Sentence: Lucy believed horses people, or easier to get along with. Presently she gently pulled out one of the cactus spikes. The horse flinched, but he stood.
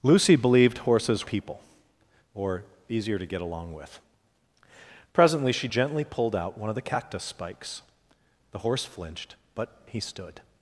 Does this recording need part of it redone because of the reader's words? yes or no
no